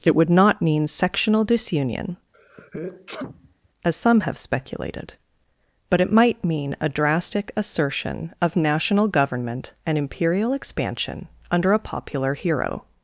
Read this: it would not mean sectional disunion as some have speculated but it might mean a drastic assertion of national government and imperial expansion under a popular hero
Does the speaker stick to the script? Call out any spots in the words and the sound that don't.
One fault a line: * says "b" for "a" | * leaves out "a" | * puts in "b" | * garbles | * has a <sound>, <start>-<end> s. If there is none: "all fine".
* has a sneeze, 2.3-3.7 s